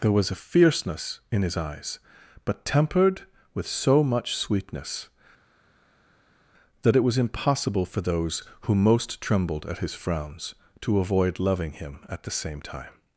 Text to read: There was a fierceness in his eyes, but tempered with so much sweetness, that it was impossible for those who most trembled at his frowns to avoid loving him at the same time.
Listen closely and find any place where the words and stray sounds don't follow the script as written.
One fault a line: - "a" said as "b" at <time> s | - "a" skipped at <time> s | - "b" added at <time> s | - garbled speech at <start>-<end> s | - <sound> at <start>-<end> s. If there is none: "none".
none